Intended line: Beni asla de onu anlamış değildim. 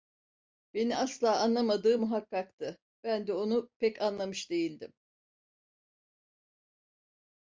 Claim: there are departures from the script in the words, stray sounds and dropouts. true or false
true